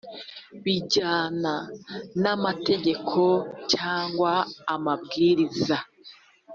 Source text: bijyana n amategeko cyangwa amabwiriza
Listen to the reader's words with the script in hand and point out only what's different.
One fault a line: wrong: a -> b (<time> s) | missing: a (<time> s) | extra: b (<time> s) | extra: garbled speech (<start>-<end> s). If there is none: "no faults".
no faults